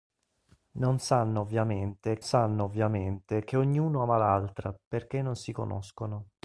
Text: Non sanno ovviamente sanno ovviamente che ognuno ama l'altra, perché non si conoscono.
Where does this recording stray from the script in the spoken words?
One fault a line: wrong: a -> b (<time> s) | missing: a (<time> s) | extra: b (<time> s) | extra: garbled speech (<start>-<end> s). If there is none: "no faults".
no faults